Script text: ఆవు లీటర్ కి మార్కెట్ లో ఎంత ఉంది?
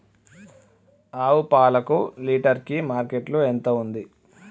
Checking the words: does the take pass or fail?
fail